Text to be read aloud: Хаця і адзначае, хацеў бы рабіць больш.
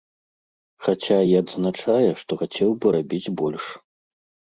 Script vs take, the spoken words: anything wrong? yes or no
yes